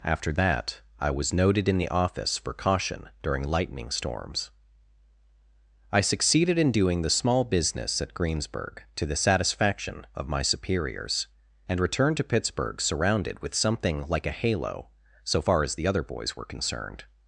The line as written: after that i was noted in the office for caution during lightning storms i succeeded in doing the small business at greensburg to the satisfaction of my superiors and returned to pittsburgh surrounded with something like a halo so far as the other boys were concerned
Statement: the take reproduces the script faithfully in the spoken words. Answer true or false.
true